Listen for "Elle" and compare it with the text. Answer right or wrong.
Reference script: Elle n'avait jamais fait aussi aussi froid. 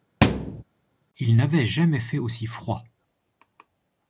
wrong